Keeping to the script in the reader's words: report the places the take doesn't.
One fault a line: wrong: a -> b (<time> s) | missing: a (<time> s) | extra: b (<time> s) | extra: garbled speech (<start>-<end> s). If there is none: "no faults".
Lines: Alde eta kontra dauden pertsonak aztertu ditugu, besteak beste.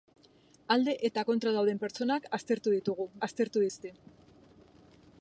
wrong: besteak -> aztertu (3.3 s)